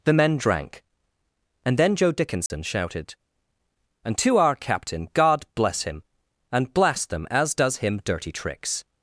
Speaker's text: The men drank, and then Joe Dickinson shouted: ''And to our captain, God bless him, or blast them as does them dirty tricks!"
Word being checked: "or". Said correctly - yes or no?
no